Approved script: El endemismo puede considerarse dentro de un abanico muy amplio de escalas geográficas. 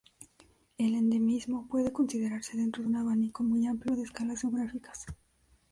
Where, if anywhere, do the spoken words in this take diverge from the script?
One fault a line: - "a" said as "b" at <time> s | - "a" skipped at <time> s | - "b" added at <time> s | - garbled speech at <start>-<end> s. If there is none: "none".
none